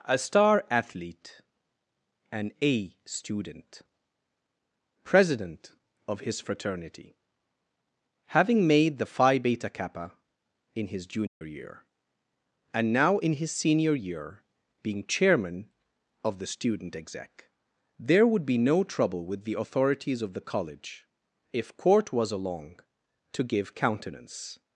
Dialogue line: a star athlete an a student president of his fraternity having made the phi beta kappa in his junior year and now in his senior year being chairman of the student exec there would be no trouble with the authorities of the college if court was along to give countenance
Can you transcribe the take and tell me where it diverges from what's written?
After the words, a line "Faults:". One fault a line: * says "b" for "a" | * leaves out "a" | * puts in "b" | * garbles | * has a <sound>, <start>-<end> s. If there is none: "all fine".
a star athlete an a student president of his fraternity having made the phi beta kappa in his junior year and now in his senior year being chairman of the student exec there would be no trouble with the authorities of the college if court was along to give countenance
Faults:
* has a dropout, 11.3-11.4 s